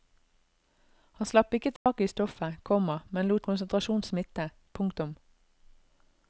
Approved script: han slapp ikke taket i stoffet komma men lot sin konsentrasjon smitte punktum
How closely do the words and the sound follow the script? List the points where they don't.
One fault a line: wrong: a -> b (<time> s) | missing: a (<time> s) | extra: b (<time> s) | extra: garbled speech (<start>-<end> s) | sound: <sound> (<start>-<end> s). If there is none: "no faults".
sound: dropout (1.8-1.9 s)
missing: sin (3.5 s)